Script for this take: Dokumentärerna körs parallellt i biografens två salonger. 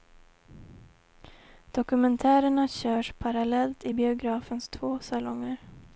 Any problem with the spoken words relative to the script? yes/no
no